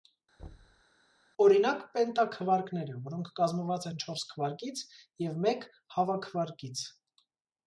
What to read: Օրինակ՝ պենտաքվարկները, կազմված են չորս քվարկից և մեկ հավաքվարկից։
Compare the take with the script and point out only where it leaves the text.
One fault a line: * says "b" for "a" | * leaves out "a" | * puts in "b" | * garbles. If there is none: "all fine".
* puts in "որոնք"